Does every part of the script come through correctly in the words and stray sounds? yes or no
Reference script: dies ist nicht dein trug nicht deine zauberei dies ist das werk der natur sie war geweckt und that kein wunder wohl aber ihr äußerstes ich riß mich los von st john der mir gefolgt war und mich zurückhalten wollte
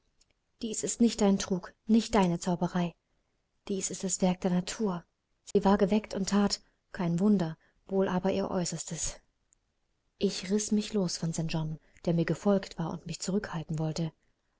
no